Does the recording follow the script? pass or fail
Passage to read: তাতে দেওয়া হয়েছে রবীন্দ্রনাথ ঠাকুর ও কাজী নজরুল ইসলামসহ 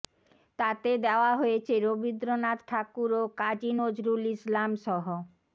pass